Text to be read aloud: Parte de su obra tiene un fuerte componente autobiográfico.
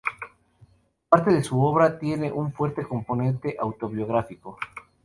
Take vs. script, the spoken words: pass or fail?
pass